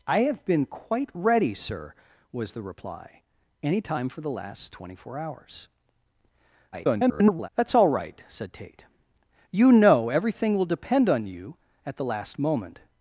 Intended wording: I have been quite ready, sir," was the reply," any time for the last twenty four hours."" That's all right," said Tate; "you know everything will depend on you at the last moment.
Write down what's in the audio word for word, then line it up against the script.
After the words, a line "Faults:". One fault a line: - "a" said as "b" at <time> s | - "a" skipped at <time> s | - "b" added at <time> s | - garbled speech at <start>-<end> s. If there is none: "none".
I have been quite ready, sir," was the reply," any time for the last twenty four hours."" [garbled] That's all right," said Tate; "you know everything will depend on you at the last moment.
Faults:
- garbled speech at 6.7-7.5 s